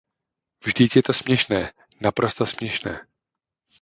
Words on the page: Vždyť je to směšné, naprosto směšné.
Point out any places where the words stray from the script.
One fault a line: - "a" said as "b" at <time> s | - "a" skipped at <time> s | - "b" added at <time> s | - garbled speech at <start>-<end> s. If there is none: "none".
none